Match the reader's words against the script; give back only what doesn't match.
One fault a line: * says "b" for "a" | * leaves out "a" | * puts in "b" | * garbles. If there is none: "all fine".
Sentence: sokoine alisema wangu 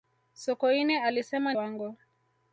all fine